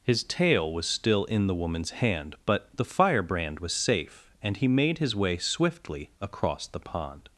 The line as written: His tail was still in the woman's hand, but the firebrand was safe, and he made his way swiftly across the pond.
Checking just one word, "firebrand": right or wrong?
right